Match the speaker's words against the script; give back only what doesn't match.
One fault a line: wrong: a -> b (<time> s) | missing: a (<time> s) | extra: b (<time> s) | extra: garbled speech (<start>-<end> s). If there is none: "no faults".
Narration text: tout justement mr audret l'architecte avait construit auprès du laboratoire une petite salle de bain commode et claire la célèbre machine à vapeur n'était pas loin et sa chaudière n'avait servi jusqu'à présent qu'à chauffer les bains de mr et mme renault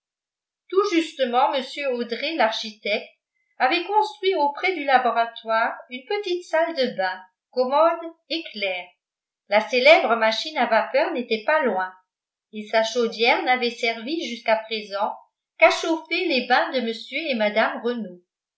no faults